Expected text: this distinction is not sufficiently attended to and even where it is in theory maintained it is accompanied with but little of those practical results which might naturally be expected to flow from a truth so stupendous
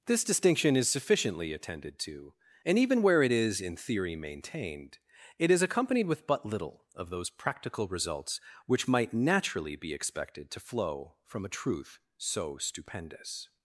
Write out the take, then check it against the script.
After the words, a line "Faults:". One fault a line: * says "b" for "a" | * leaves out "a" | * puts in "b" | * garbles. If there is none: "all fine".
this distinction is sufficiently attended to and even where it is in theory maintained it is accompanied with but little of those practical results which might naturally be expected to flow from a truth so stupendous
Faults:
* leaves out "not"